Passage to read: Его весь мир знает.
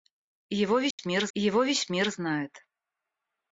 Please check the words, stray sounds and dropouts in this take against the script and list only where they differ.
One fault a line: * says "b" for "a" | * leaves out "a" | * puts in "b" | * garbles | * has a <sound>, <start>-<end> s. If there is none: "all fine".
* has a dropout, 0.9-1.0 s
* puts in "его весь мир"